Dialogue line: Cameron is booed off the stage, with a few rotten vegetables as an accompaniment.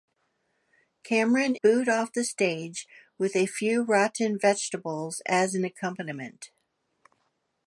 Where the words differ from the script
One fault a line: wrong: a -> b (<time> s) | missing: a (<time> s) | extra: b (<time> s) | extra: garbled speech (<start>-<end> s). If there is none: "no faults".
missing: is (1.6 s)